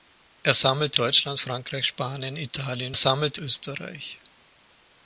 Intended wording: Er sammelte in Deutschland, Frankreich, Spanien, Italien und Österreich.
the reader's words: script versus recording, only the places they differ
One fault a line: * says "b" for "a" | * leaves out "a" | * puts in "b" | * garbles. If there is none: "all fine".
* leaves out "in"
* says "sammelte" for "und"